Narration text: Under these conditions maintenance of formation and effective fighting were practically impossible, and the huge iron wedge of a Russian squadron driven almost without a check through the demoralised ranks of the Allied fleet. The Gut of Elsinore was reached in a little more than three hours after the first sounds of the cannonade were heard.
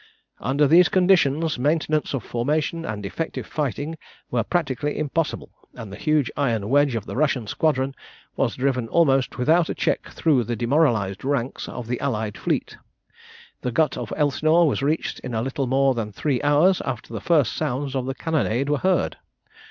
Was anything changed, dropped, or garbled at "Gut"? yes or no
no